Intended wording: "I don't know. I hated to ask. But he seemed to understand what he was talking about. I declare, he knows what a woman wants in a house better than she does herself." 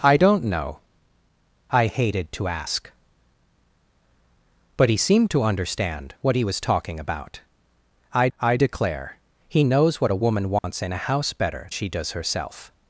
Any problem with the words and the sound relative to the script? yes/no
yes